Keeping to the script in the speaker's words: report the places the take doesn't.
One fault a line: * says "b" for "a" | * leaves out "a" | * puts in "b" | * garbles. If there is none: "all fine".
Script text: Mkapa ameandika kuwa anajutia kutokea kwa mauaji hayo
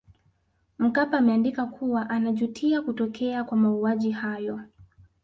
all fine